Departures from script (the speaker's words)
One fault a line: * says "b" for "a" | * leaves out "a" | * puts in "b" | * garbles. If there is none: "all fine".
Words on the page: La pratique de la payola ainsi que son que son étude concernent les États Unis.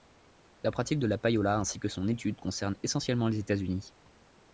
* leaves out "que son"
* puts in "essentiellement"